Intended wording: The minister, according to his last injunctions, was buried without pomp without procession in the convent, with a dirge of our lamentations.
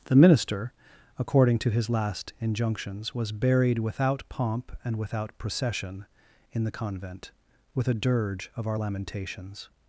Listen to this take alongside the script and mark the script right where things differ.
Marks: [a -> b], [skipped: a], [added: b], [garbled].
The minister, according to his last injunctions, was buried without pomp [added: and] without procession in the convent, with a dirge of our lamentations.